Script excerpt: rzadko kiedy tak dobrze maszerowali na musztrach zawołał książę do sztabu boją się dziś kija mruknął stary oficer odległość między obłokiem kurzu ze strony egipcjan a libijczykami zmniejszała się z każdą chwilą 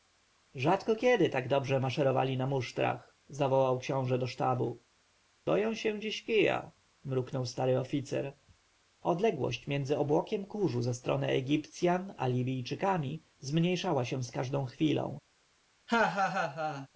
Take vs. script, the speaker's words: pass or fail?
pass